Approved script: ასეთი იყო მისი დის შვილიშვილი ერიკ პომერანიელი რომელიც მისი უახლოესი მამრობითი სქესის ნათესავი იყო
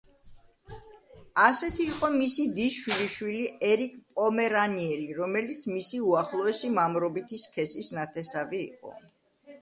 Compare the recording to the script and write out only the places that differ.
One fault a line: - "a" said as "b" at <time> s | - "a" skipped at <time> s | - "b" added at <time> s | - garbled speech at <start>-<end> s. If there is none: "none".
none